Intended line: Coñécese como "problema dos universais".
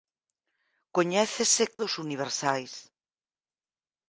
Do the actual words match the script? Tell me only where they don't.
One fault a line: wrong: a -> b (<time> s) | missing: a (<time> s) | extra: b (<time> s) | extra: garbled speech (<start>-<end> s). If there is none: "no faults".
missing: como problema (1.6 s)